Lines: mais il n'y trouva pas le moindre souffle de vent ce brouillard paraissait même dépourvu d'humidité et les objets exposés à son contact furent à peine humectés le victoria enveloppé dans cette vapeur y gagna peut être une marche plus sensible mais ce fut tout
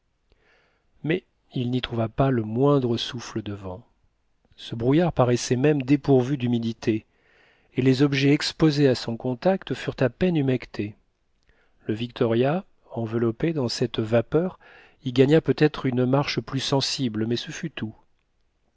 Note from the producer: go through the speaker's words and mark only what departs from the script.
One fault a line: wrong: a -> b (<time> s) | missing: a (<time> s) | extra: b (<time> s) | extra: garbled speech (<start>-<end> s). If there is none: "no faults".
no faults